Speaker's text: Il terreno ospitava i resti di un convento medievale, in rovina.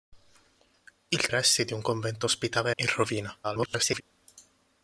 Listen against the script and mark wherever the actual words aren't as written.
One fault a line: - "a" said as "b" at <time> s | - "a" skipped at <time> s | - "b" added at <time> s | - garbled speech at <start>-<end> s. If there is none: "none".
- "terreno ospitava" skipped at 1.3 s
- "medievale" said as "ospitava" at 2.2 s
- garbled speech at 3.4-4.0 s